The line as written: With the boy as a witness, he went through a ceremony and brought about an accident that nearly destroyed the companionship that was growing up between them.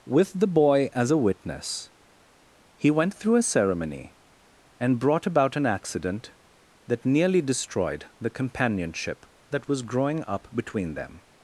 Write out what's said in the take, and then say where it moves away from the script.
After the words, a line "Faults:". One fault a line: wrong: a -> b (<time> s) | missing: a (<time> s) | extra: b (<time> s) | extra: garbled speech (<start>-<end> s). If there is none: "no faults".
With the boy as a witness, he went through a ceremony and brought about an accident that nearly destroyed the companionship that was growing up between them.
Faults:
no faults